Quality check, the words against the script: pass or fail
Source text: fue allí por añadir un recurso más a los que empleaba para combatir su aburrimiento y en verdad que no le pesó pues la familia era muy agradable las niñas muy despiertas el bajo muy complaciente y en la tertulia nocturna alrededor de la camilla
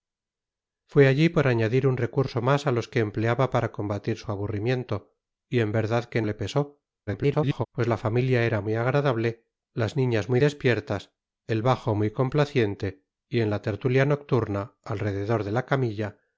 fail